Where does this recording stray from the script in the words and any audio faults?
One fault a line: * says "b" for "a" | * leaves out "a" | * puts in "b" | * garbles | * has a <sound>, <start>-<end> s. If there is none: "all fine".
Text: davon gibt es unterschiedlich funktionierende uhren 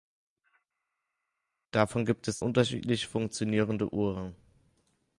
all fine